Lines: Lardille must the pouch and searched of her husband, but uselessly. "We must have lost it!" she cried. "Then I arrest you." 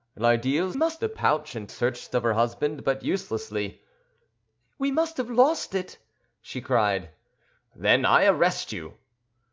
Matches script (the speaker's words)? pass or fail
pass